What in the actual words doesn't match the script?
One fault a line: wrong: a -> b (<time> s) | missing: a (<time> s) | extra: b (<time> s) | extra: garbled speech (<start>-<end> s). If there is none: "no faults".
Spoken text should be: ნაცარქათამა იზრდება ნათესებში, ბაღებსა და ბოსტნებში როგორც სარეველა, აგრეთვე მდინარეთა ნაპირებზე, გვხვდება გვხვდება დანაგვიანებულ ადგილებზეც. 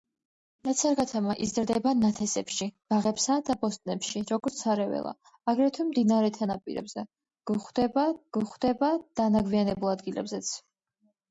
no faults